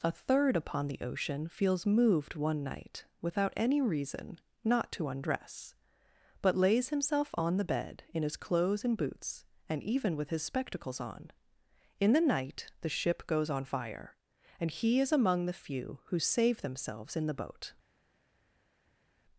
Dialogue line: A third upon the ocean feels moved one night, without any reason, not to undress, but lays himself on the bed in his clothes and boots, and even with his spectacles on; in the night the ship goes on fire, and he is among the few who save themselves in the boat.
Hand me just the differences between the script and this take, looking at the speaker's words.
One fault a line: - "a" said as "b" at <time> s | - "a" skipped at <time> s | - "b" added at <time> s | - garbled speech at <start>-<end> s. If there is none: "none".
none